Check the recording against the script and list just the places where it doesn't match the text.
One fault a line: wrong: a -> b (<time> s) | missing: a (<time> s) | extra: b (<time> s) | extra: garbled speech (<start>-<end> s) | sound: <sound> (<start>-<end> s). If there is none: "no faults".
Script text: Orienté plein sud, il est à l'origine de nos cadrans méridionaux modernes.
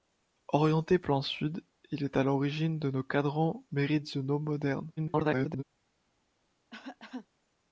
extra: garbled speech (5.0-5.6 s)
sound: cough (6.7-7.3 s)